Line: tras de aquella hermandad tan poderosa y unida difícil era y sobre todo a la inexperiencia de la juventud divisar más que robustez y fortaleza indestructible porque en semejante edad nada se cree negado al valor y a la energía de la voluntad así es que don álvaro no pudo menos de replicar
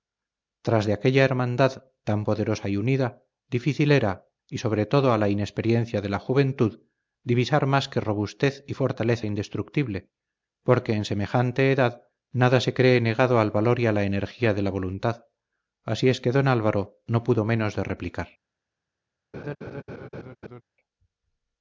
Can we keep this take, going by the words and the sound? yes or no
no